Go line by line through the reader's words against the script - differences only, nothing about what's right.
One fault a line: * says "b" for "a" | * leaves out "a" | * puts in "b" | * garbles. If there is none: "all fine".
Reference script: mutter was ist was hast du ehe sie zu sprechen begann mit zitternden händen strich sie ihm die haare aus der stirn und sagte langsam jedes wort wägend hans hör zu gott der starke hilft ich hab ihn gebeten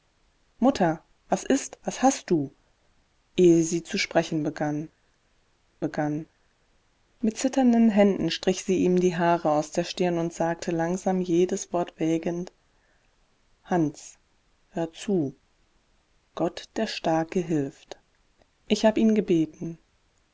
* puts in "begann"